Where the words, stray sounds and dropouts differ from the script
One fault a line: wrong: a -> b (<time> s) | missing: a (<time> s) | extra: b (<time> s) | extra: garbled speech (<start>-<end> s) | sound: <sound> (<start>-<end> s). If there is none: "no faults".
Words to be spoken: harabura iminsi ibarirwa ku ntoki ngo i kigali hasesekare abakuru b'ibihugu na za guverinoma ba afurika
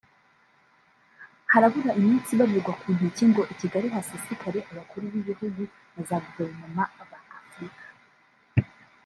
no faults